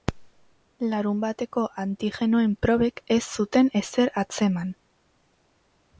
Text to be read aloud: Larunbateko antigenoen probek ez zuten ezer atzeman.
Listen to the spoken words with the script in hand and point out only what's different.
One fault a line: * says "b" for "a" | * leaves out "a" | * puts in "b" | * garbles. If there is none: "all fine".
all fine